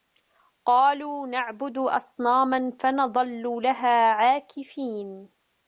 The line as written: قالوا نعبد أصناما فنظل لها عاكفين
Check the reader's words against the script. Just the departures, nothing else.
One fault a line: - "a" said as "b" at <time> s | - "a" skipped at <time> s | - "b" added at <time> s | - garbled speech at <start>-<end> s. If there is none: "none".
none